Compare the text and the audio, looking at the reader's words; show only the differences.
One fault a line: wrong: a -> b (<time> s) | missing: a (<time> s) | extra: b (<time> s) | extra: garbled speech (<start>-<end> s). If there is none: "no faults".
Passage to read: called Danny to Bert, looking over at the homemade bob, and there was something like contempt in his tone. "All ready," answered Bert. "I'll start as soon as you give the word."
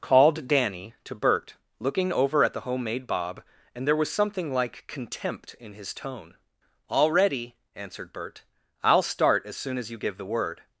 no faults